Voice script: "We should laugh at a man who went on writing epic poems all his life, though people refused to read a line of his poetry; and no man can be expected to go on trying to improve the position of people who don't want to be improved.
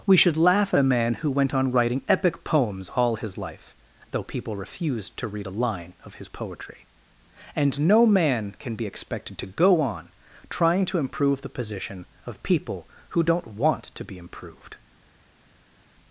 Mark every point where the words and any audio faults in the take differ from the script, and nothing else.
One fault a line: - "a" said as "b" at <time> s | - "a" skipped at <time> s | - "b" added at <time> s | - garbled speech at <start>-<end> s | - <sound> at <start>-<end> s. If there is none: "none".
none